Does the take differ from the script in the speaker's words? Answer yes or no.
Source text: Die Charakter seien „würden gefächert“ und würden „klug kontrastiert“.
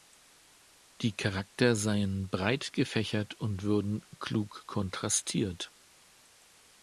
yes